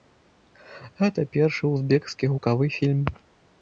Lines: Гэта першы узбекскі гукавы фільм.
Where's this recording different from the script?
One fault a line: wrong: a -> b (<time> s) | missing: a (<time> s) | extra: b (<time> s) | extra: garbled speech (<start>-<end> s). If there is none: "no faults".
no faults